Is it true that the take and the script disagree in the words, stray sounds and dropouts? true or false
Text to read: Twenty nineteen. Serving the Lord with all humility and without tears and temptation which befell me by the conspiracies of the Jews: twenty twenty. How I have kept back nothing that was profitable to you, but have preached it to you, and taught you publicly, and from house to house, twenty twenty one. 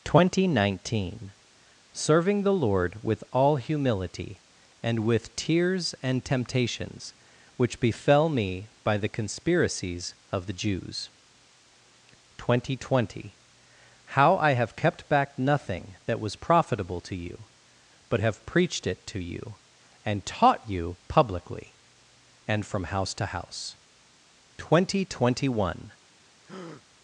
true